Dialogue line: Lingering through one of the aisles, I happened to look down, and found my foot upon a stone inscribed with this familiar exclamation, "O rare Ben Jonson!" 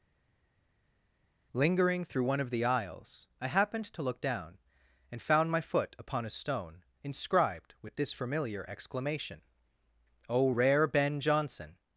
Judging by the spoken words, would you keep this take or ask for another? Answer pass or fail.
pass